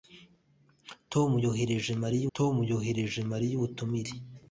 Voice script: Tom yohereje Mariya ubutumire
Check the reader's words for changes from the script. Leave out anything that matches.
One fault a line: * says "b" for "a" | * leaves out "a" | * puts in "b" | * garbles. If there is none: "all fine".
* puts in "tom yohereje Mariya"